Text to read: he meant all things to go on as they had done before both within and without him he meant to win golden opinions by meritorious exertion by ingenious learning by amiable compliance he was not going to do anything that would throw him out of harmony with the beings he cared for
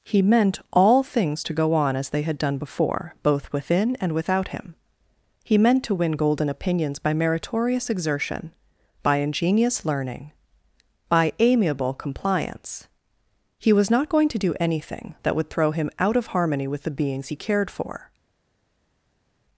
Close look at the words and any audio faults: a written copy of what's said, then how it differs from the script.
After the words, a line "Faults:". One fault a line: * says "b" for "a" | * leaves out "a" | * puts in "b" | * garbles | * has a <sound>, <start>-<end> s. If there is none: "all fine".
he meant all things to go on as they had done before both within and without him he meant to win golden opinions by meritorious exertion by ingenious learning by amiable compliance he was not going to do anything that would throw him out of harmony with the beings he cared for
Faults:
all fine